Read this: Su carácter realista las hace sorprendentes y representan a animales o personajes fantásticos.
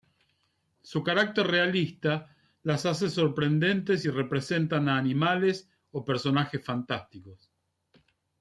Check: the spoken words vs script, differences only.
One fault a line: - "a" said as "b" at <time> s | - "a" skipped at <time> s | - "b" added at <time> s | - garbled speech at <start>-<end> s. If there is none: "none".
none